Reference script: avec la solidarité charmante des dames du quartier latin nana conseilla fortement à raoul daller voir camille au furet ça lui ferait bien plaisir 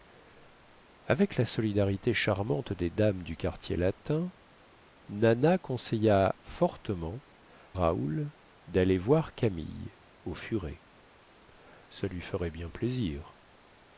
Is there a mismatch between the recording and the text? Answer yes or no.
yes